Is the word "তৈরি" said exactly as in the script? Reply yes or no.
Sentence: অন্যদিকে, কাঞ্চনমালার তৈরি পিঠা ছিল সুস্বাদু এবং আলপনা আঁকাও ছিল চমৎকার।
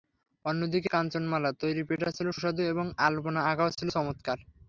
yes